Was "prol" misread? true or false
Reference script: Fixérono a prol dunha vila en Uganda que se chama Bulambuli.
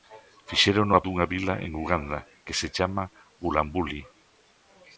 true